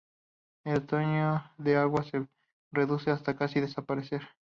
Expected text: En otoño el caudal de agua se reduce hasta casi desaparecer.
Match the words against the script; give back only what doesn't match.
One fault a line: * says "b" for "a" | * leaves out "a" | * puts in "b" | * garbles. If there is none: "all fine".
* leaves out "el caudal"